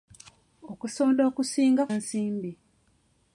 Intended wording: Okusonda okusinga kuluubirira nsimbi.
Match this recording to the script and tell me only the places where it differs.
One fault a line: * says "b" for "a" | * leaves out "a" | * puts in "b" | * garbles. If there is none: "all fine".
* leaves out "kuluubirira"